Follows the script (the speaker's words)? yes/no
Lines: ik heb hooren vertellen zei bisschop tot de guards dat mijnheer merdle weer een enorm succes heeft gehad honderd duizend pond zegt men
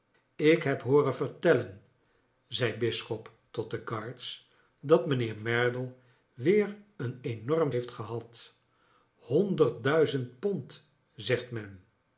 no